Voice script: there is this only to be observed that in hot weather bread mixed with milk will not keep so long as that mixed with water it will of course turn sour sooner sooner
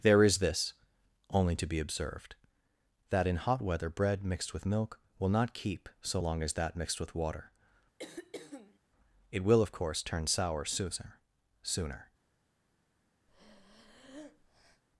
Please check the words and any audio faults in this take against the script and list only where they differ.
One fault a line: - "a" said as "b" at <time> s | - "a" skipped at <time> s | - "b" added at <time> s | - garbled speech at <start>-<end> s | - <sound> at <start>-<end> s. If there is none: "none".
- throat clearing at 8.0-8.8 s
- breath at 13.3-14.8 s